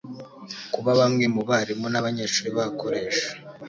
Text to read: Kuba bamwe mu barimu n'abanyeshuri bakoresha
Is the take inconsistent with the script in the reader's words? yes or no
no